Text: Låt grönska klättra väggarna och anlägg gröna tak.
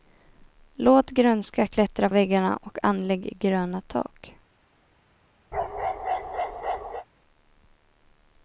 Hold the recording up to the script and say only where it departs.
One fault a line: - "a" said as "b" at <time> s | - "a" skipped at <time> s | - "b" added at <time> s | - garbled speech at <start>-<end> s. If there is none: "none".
none